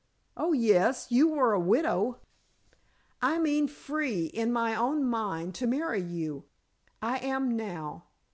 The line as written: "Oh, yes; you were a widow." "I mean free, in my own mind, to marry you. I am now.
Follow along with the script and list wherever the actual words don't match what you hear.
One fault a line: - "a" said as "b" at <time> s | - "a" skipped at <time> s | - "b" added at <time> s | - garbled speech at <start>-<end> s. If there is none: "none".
none